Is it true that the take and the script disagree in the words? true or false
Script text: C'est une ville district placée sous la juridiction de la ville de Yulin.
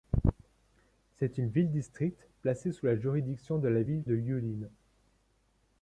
false